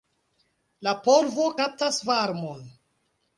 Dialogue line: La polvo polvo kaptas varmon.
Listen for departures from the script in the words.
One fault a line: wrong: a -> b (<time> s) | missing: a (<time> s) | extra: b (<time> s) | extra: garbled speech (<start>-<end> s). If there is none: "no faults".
missing: polvo (1.5 s)